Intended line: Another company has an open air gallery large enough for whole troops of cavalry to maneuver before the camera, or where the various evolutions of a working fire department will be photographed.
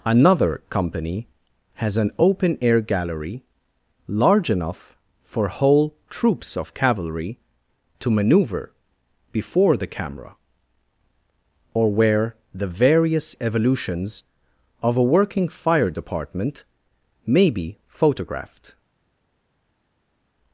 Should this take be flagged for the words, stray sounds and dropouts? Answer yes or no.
yes